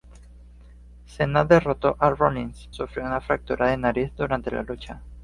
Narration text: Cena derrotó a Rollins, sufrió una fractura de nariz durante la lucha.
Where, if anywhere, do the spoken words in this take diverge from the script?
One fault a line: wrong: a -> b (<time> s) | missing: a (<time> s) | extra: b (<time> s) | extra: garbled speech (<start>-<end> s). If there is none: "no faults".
no faults